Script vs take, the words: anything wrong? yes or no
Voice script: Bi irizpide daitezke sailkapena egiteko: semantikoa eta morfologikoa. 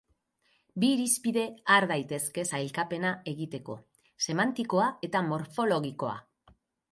yes